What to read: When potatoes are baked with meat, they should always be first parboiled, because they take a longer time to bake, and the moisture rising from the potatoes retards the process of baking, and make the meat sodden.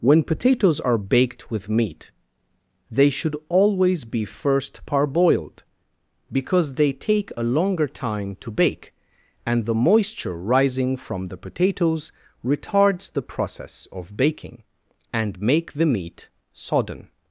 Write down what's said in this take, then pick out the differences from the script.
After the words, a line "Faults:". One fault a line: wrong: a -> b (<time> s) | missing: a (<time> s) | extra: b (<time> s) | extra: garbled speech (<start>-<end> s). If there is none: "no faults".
When potatoes are baked with meat, they should always be first parboiled, because they take a longer time to bake, and the moisture rising from the potatoes retards the process of baking, and make the meat sodden.
Faults:
no faults